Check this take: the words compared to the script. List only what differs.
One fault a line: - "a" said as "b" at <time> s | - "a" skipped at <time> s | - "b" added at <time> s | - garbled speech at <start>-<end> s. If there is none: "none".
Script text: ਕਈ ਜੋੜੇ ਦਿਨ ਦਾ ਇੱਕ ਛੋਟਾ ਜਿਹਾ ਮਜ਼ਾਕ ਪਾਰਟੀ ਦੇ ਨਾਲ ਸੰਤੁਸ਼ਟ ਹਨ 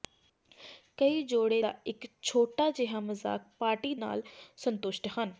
- "ਦਿਨ" skipped at 1.6 s
- "ਦੇ" skipped at 3.9 s